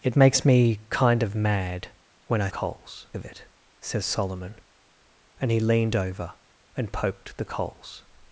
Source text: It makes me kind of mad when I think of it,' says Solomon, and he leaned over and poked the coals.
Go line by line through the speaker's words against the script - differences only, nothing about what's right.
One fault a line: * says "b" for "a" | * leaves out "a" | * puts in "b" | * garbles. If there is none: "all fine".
* says "coals" for "think"